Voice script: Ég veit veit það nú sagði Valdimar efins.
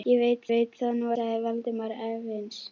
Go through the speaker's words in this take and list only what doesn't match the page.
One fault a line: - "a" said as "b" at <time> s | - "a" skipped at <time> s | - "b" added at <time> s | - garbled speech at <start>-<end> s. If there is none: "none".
none